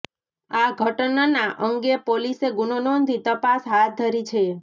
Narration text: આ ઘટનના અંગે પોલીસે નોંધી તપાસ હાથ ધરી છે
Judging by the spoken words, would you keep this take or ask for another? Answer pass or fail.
fail